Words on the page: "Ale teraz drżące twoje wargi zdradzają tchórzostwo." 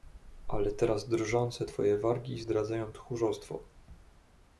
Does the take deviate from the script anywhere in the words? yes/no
no